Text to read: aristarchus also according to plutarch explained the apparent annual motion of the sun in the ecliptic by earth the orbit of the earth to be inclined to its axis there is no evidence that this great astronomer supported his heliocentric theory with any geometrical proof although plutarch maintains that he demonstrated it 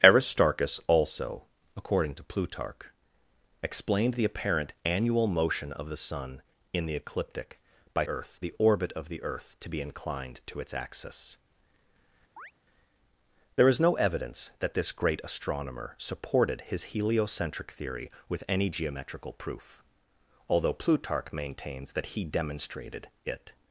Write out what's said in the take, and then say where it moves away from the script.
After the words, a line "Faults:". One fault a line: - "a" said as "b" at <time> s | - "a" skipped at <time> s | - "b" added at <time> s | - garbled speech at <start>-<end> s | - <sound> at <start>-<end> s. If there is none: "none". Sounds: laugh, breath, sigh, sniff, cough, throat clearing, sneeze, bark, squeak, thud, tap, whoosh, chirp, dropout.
aristarchus also according to plutarch explained the apparent annual motion of the sun in the ecliptic by earth the orbit of the earth to be inclined to its axis there is no evidence that this great astronomer supported his heliocentric theory with any geometrical proof although plutarch maintains that he demonstrated it
Faults:
- chirp at 12.4-12.5 s